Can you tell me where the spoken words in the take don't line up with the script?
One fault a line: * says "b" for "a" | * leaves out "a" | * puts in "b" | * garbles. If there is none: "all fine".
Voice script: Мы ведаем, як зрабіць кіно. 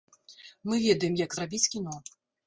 all fine